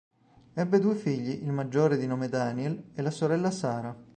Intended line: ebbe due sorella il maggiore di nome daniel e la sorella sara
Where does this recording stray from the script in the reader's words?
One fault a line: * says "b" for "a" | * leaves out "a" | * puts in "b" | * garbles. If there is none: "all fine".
* says "figli" for "sorella"